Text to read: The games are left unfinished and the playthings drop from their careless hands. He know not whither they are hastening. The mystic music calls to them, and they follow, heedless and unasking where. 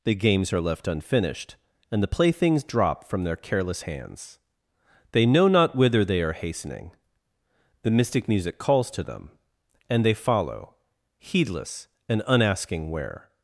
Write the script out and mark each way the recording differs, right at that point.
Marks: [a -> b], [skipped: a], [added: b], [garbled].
The games are left unfinished and the playthings drop from their careless hands. [He -> They] know not whither they are hastening. The mystic music calls to them, and they follow, heedless and unasking where.